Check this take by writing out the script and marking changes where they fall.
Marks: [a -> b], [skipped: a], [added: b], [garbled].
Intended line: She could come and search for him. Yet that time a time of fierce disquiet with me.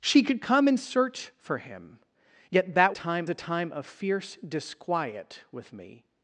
She could come and search for him. Yet that time a time of fierce disquiet with me.